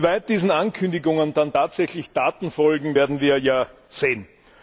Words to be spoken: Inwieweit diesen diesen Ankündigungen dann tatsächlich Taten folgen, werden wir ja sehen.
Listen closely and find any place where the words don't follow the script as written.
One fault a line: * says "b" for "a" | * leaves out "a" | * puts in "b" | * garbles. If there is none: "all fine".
* leaves out "diesen"